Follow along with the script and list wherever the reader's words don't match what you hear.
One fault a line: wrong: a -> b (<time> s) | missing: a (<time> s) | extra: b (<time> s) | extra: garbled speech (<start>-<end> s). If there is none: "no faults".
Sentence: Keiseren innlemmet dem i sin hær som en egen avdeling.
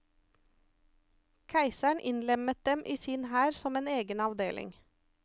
no faults